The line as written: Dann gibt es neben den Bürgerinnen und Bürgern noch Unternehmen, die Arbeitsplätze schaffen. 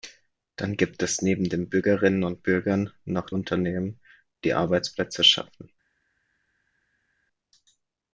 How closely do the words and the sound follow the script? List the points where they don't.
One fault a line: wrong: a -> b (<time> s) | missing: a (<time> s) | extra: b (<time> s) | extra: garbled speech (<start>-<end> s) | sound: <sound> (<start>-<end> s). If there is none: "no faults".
no faults